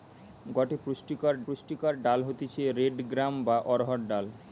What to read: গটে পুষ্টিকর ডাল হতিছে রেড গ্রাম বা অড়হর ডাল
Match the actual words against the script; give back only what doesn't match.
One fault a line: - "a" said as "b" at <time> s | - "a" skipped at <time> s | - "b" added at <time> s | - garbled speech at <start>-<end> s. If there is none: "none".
- "পুষ্টিকর" added at 1.4 s